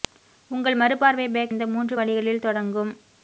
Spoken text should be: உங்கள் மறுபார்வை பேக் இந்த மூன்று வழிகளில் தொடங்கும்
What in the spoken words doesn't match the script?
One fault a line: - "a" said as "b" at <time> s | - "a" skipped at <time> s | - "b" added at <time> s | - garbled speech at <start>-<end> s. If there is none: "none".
none